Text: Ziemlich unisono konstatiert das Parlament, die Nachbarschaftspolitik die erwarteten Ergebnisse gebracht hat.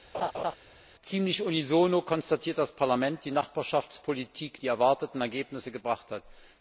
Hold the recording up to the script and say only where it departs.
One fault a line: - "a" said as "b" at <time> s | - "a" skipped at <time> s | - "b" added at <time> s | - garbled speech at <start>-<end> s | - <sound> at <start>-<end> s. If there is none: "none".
- laugh at 0.1-0.6 s